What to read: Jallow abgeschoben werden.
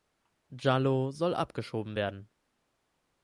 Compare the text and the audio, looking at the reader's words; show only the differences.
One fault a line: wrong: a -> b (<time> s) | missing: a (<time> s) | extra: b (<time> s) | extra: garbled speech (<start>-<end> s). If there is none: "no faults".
extra: soll (1.1 s)